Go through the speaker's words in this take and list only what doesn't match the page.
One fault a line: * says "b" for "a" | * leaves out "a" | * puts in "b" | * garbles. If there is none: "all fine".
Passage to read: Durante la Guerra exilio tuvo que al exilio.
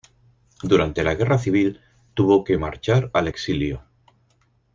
* says "civil" for "exilio"
* puts in "marchar"